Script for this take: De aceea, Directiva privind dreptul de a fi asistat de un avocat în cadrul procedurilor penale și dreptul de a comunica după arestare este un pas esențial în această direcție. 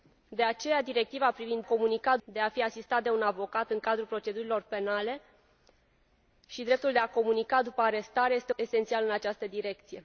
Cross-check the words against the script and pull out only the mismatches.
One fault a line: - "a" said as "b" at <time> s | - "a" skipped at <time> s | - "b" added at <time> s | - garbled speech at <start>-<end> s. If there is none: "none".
- "dreptul" said as "comunica" at 1.6 s
- "un pas" skipped at 8.5 s